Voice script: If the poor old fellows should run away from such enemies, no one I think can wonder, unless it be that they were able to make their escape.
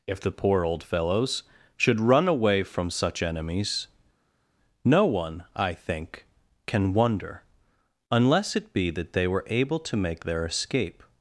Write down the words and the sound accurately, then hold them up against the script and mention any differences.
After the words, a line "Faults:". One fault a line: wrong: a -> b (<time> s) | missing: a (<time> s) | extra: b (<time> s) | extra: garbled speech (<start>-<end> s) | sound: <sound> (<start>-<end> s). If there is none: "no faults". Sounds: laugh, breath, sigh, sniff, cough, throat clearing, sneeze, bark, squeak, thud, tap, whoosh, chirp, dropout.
If the poor old fellows should run away from such enemies, no one I think can wonder, unless it be that they were able to make their escape.
Faults:
no faults